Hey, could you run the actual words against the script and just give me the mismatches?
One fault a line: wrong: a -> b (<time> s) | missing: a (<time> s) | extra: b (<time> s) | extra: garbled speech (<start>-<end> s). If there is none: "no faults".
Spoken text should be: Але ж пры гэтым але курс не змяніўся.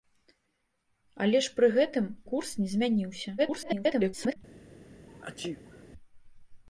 missing: але (2.1 s)
extra: garbled speech (3.4-4.4 s)